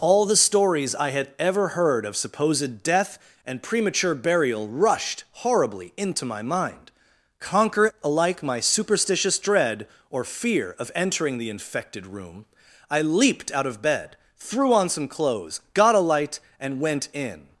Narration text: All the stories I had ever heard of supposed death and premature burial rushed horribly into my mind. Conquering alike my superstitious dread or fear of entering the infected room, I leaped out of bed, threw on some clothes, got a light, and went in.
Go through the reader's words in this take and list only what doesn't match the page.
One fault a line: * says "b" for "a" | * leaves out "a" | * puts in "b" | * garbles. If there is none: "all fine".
* says "Conquer" for "Conquering"